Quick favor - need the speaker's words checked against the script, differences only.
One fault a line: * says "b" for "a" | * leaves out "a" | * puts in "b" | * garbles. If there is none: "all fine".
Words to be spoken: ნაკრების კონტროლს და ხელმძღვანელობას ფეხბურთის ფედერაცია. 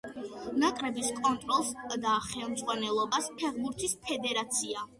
all fine